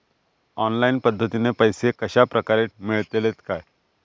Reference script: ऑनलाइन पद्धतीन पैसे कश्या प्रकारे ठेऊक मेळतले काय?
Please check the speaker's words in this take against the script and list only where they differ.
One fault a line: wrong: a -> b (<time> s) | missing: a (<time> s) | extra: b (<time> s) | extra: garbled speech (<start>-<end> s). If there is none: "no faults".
missing: ठेऊक (2.6 s)